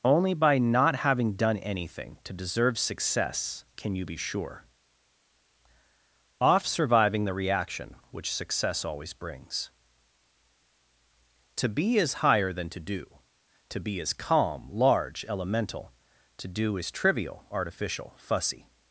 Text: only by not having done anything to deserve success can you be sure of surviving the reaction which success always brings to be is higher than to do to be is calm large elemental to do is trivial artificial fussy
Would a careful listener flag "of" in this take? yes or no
yes